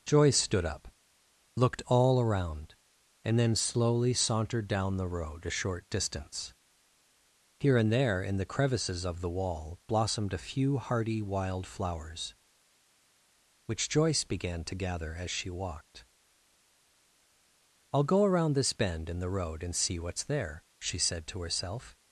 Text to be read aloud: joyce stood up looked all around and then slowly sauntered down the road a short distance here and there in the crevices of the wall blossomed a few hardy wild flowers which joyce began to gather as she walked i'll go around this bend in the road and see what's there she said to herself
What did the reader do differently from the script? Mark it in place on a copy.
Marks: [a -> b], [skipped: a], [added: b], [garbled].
joyce stood up looked all around and then slowly sauntered down the road a short distance here and there in the crevices of the wall blossomed a few hardy wild flowers which joyce began to gather as she walked i'll go around this bend in the road and see what's there she said to herself